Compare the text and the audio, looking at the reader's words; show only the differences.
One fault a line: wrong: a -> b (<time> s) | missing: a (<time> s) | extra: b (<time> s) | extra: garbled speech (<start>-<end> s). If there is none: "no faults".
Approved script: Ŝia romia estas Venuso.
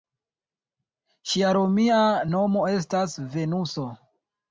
extra: nomo (2.3 s)